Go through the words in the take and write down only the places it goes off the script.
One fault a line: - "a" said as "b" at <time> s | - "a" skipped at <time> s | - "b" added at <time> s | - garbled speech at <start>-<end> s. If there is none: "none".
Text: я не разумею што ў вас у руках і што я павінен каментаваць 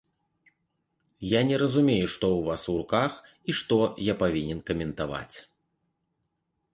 none